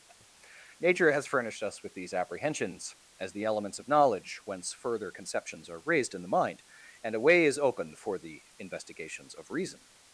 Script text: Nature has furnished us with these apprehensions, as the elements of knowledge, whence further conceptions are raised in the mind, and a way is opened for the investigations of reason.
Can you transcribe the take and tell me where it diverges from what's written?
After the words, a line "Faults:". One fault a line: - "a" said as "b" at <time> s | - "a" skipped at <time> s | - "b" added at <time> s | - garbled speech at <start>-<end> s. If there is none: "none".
Nature has furnished us with these apprehensions, as the elements of knowledge, whence further conceptions are raised in the mind, and a way is opened for the investigations of reason.
Faults:
none